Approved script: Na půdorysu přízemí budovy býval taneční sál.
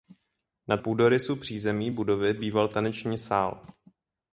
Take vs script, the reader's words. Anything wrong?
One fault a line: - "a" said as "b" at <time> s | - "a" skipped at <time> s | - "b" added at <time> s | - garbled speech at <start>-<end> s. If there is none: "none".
none